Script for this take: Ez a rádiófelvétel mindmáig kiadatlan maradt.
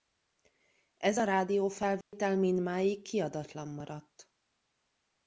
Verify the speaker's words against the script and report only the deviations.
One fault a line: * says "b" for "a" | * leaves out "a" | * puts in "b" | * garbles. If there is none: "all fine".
all fine